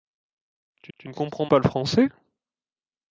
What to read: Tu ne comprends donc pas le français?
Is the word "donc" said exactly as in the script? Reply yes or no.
no